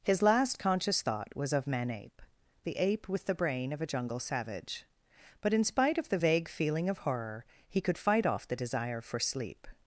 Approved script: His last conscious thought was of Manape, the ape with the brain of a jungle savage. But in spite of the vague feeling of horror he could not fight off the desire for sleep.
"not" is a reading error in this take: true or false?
true